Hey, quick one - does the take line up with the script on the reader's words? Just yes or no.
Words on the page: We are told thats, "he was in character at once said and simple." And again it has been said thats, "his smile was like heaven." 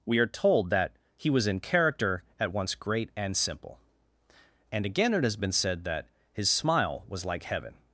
no